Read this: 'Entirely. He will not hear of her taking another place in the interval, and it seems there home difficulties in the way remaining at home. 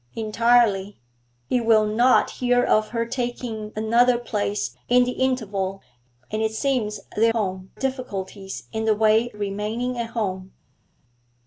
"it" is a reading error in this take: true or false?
false